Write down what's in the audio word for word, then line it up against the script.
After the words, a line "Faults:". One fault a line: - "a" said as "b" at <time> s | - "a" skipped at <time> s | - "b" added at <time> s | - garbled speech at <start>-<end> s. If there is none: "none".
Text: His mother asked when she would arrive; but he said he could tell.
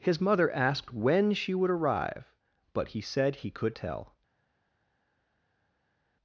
His mother asked when she would arrive; but he said he could tell.
Faults:
none